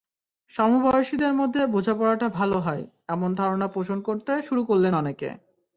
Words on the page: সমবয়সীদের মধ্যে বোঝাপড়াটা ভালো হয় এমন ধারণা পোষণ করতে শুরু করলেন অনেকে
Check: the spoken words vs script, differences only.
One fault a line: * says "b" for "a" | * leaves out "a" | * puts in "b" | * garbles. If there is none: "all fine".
all fine